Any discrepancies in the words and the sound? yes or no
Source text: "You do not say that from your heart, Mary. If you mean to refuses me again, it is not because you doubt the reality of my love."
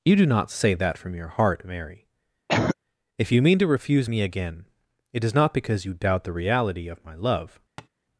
yes